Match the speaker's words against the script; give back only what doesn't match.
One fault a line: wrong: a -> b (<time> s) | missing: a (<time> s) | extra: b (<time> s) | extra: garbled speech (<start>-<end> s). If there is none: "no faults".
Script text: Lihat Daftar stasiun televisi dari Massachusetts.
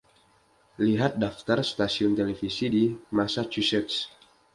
wrong: dari -> di (2.7 s)